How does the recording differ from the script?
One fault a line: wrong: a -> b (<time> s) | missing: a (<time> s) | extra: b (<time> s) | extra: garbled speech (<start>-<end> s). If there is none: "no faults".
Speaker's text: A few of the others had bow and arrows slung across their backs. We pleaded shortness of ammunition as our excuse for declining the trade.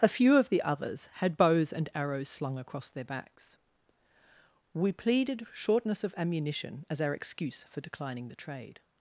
wrong: bow -> bows (1.4 s)